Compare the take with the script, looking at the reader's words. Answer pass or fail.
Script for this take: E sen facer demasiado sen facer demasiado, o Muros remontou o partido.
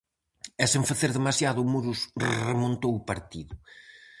fail